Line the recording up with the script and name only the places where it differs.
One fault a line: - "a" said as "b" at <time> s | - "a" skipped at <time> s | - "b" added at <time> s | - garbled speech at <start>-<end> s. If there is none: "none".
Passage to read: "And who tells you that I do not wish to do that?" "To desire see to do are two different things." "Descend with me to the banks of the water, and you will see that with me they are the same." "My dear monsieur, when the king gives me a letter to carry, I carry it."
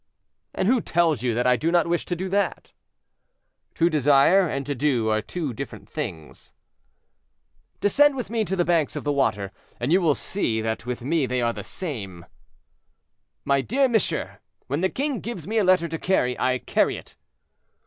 - "see" said as "and" at 4.5 s